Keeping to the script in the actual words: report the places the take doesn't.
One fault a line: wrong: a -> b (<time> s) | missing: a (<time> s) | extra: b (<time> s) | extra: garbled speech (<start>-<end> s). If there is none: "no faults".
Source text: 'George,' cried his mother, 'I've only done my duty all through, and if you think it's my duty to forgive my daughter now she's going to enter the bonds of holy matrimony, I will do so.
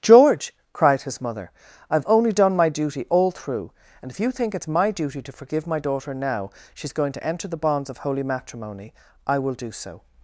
no faults